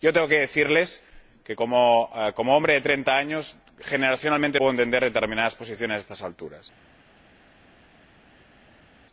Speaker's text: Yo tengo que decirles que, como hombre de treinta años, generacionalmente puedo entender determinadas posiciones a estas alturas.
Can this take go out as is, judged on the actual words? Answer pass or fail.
pass